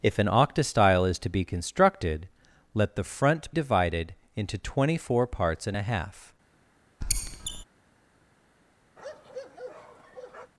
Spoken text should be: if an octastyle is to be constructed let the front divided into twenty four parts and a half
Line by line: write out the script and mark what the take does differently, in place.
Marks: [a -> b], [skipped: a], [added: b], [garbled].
if an octastyle is to be constructed let the front divided into twenty four parts and a half